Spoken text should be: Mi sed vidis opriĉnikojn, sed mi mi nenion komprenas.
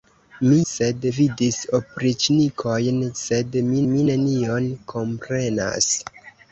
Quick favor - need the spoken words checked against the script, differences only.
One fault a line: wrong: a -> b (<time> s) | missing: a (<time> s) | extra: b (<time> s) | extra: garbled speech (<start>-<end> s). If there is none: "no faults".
no faults